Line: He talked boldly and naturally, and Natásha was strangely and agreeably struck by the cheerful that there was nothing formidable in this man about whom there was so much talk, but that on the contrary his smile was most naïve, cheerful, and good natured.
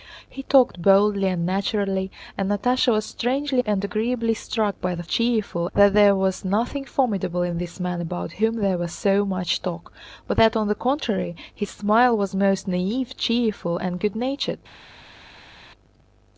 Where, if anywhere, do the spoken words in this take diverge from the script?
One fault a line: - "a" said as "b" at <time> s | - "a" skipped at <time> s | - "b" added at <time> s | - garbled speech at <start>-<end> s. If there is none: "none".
none